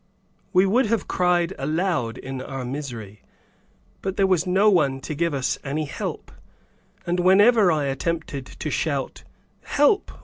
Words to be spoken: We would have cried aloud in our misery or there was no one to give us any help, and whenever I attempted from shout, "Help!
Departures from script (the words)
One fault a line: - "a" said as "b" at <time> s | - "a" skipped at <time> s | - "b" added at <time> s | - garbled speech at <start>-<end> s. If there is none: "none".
- "or" said as "but" at 4.0 s
- "from" said as "to" at 8.5 s